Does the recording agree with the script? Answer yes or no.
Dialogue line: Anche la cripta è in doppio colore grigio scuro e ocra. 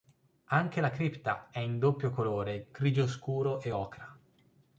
yes